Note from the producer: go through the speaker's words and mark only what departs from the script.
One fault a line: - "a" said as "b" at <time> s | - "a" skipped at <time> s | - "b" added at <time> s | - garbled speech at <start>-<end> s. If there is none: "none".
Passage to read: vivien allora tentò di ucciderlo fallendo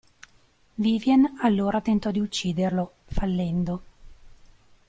none